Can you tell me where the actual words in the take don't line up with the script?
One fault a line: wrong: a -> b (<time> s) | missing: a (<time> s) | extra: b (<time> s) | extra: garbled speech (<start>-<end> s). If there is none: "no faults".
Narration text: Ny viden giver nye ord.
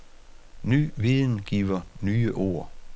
no faults